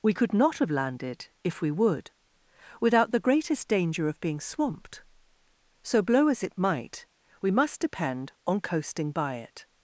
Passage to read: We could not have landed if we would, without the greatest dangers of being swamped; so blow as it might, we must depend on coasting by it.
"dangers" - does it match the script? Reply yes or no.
no